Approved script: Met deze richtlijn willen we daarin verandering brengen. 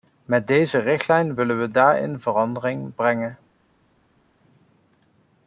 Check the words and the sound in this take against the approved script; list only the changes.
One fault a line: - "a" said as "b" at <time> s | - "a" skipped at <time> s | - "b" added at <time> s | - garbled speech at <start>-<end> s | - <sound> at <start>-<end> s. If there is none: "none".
none